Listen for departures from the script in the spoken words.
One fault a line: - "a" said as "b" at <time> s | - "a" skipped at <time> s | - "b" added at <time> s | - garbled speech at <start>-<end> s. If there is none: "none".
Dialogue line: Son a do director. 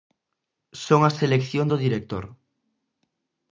- "selección" added at 1.2 s